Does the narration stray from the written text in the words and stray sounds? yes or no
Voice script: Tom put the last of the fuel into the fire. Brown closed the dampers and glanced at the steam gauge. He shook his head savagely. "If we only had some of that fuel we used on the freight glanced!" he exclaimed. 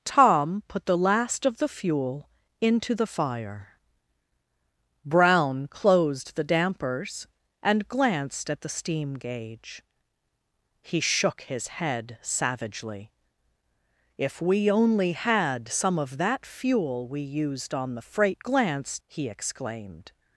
no